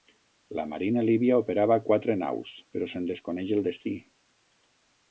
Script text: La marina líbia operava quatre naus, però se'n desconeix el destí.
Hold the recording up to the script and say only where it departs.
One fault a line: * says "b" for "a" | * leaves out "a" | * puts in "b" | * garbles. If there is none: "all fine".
all fine